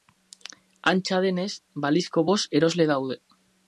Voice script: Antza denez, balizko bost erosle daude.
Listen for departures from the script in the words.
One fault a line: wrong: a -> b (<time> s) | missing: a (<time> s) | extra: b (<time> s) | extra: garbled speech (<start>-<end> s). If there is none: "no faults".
no faults